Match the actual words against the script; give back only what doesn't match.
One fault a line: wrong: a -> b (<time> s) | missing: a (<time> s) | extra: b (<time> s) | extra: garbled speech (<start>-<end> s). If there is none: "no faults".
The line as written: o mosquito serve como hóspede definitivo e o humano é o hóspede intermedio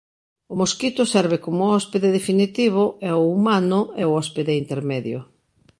no faults